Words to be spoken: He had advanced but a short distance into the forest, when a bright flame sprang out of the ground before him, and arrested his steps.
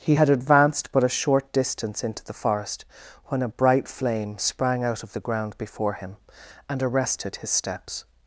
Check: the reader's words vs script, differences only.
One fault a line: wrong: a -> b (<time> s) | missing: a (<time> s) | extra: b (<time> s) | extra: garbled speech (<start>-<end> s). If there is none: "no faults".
no faults